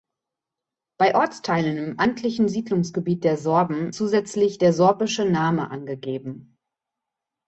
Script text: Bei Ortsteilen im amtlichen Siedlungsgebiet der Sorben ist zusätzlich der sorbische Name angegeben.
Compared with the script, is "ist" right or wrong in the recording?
wrong